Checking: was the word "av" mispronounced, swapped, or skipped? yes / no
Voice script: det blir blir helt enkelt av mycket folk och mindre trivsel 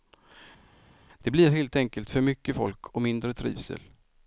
yes